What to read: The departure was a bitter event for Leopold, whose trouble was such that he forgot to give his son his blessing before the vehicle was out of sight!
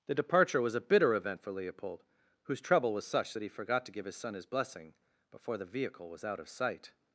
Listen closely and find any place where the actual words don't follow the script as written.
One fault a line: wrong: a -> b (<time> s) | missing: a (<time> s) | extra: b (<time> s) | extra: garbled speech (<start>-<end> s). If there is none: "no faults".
no faults